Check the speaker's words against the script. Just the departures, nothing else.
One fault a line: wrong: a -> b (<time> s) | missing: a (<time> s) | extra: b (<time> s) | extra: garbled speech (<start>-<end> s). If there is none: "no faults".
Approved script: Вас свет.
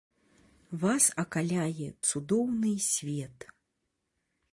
extra: акаляе цудоўны (1.2 s)